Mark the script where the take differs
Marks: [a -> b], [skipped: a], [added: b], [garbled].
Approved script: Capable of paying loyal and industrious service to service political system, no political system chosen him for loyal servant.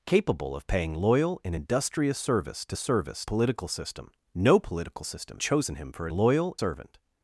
Capable of paying loyal and industrious service to service political system, no political system chosen him for loyal servant.